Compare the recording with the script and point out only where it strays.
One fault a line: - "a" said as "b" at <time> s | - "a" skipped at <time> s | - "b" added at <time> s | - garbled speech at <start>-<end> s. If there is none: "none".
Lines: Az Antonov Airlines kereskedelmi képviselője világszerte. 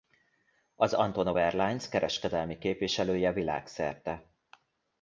none